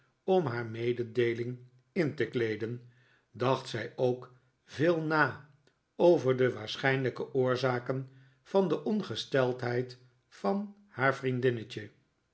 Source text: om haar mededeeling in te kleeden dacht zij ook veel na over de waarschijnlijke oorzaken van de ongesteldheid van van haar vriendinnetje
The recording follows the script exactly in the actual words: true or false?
false